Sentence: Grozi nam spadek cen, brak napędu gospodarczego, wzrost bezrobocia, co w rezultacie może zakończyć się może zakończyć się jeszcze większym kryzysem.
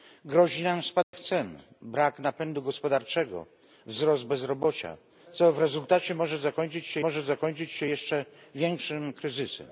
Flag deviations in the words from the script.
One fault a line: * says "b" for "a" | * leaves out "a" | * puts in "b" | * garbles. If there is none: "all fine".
all fine